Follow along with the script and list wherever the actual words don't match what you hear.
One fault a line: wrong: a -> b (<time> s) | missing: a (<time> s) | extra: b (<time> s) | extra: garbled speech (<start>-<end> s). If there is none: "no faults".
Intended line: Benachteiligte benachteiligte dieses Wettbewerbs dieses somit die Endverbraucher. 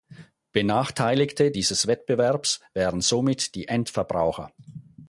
missing: benachteiligte (1.5 s)
wrong: dieses -> wären (2.7 s)